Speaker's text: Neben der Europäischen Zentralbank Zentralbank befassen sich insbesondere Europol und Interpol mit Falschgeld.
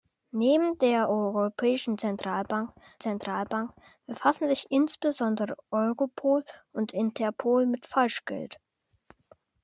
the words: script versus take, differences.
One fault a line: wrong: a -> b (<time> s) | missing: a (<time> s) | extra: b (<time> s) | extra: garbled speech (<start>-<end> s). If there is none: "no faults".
no faults